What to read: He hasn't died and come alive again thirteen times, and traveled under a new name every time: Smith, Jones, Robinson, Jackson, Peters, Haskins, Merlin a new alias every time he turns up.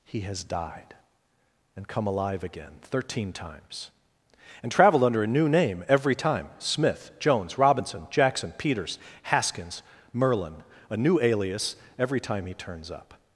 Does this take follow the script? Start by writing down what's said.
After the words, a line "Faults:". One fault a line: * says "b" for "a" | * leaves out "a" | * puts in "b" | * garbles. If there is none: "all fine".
He has died and come alive again thirteen times, and traveled under a new name every time: Smith, Jones, Robinson, Jackson, Peters, Haskins, Merlin a new alias every time he turns up.
Faults:
* says "has" for "hasn't"